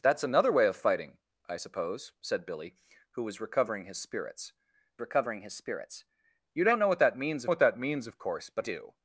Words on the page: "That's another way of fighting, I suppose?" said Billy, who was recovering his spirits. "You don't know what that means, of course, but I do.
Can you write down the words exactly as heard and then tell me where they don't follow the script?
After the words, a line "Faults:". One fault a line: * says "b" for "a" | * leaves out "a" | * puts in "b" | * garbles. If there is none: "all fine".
"That's another way of fighting, I suppose?" said Billy, who was recovering his spirits recovering his spirits. "You don't know what that means what that means, of course, but do.
Faults:
* puts in "recovering his spirits"
* puts in "what that means"
* leaves out "I"